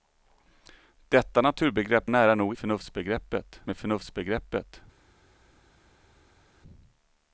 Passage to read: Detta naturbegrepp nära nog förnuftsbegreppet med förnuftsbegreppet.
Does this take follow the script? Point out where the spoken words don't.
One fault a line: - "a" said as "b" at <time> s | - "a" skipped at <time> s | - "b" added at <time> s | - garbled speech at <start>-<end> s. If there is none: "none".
none